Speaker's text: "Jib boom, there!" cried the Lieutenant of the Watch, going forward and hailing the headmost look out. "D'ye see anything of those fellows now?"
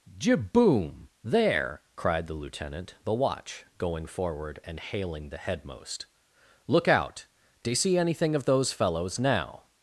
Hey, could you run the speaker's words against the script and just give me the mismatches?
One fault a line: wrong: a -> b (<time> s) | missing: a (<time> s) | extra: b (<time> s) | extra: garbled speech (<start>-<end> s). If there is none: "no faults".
missing: of (2.9 s)